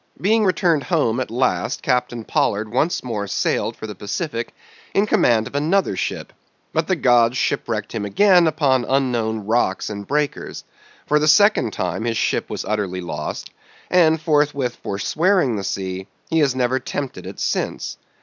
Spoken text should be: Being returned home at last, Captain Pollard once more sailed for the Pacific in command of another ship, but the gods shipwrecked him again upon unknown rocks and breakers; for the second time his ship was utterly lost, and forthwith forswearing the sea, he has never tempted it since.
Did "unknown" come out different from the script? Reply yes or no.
no